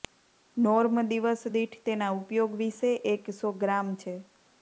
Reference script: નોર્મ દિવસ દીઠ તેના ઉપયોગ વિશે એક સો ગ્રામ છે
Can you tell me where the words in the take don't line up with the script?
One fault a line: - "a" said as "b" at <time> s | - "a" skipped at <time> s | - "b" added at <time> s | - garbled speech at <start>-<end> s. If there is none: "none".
none